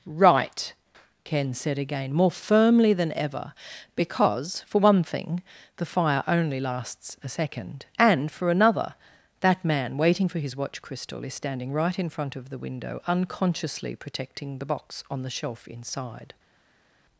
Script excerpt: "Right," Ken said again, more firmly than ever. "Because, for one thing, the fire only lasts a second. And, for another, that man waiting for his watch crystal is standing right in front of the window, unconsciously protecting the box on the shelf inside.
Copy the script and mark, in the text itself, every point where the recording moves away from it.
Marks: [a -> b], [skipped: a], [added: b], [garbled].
"Right," Ken said again, more firmly than ever. "Because, for one thing, the fire only lasts a second. And, for another, that man waiting for his watch crystal is standing right in front of the window, unconsciously protecting the box on the shelf inside.